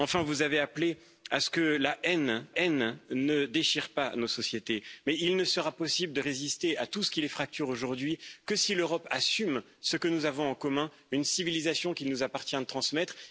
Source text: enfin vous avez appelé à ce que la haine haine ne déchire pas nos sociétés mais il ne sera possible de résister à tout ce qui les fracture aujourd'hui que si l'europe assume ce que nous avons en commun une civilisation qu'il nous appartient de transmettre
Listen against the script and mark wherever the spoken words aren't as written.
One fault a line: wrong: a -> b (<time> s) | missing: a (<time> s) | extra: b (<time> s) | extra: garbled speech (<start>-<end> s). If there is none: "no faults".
no faults